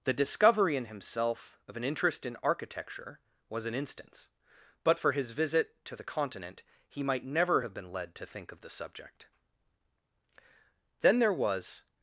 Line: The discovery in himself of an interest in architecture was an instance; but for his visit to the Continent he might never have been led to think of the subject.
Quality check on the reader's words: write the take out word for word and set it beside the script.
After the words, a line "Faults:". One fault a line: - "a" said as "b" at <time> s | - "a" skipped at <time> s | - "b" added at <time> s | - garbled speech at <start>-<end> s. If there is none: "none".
The discovery in himself of an interest in architecture was an instance; but for his visit to the Continent he might never have been led to think of the subject. Then there was
Faults:
- "Then there was" added at 11.0 s